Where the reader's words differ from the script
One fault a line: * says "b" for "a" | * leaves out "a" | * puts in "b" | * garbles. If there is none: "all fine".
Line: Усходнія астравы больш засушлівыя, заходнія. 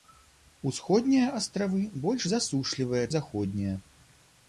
all fine